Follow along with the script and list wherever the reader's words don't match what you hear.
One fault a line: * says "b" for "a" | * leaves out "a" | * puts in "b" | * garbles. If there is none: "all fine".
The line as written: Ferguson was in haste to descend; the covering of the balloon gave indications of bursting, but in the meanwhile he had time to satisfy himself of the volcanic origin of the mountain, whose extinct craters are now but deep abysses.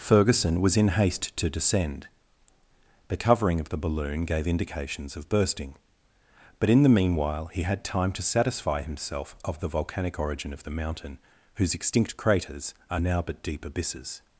all fine